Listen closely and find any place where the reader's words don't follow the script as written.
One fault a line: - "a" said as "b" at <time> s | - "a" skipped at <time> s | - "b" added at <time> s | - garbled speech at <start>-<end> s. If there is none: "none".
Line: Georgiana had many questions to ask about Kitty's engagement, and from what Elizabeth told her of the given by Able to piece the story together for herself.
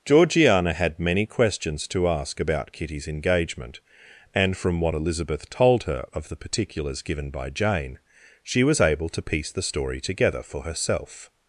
- "particulars" added at 6.4 s
- "Jane she was" added at 7.5 s